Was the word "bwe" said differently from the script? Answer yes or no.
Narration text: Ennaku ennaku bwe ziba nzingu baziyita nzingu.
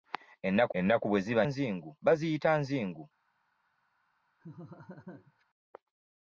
no